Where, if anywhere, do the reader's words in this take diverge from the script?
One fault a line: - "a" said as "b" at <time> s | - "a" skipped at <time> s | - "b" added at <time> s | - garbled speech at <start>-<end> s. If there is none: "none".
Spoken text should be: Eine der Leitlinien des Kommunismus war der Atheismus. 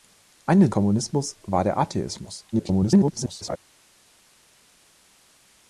- "der Leitlinien des" skipped at 0.7 s
- garbled speech at 2.5-3.6 s